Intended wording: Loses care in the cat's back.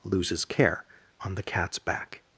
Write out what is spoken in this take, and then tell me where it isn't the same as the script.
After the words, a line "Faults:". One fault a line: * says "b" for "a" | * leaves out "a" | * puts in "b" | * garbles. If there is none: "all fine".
Loses care on the cat's back.
Faults:
* says "on" for "in"